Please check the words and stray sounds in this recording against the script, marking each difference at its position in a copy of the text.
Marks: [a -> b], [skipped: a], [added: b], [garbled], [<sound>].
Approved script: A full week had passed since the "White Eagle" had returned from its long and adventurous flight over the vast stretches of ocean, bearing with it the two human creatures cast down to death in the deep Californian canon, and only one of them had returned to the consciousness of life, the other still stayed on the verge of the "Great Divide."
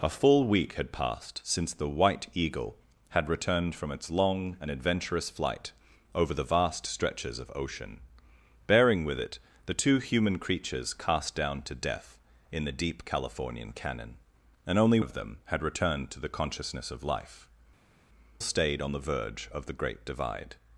A full week had passed since the "White Eagle" had returned from its long and adventurous flight over the vast stretches of ocean, bearing with it the two human creatures cast down to death in the deep Californian canon, and only [skipped: one] of them had returned to the consciousness of life, [skipped: the other still] stayed on the verge of the "Great Divide."